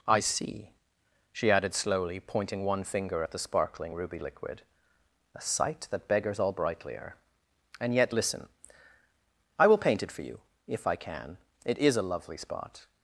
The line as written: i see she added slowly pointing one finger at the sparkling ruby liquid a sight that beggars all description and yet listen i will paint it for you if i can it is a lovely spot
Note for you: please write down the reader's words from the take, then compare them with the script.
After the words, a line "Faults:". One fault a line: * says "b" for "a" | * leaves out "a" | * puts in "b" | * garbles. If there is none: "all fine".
i see she added slowly pointing one finger at the sparkling ruby liquid a sight that beggars all brightlier and yet listen i will paint it for you if i can it is a lovely spot
Faults:
* says "brightlier" for "description"